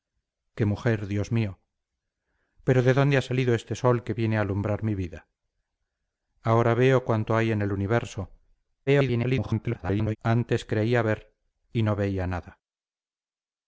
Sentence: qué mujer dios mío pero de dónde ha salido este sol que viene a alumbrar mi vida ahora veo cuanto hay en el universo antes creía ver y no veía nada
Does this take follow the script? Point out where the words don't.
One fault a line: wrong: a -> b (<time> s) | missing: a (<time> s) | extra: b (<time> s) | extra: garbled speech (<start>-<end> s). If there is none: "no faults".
extra: garbled speech (8.9-10.2 s)